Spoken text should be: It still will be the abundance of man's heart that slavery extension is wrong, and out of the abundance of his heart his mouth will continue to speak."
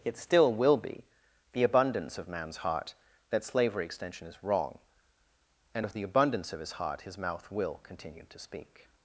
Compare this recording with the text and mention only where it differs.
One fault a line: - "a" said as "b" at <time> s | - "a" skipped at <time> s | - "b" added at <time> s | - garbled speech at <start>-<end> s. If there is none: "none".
- "out" skipped at 5.9 s